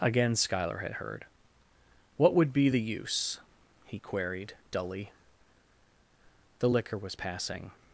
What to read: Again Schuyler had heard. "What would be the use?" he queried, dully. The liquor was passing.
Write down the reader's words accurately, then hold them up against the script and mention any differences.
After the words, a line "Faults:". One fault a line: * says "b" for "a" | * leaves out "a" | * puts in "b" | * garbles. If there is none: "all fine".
Again Schuyler had heard. "What would be the use?" he queried, dully. The liquor was passing.
Faults:
all fine